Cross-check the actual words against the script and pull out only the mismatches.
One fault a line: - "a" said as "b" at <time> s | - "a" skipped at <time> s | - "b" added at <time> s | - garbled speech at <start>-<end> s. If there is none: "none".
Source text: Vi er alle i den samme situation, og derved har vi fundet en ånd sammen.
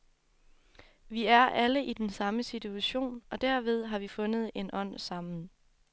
none